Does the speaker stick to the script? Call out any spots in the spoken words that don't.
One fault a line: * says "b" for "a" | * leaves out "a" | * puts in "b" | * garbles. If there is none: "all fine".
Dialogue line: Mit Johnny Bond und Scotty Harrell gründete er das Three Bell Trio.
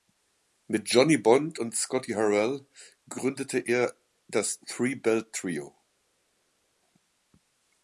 all fine